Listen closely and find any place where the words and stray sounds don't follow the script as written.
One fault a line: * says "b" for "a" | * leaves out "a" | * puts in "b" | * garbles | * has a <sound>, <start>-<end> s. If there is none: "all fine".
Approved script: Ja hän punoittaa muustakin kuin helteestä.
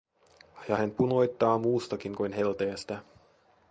all fine